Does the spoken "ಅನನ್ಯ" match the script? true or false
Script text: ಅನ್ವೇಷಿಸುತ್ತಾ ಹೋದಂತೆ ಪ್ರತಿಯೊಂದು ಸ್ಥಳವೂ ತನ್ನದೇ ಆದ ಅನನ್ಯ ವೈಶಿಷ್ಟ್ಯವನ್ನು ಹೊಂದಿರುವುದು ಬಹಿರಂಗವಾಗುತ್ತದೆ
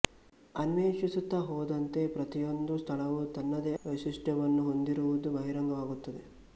false